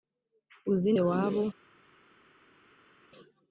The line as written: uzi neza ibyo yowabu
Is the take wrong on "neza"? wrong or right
wrong